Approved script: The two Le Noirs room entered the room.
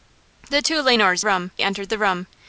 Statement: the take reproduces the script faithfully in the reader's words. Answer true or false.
true